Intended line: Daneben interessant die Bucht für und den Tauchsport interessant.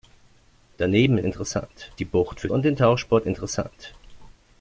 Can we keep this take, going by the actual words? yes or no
yes